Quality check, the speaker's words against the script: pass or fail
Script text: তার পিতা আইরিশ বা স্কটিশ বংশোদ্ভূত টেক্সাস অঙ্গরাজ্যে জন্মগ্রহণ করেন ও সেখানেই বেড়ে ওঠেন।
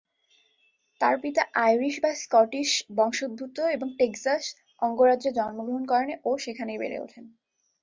fail